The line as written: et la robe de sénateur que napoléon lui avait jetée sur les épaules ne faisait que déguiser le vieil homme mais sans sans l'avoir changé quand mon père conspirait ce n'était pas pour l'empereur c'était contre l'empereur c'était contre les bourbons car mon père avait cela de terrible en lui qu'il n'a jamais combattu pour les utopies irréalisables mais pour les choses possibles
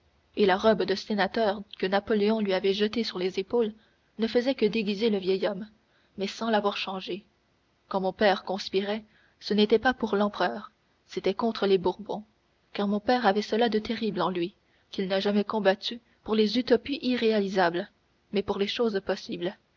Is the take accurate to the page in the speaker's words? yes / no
no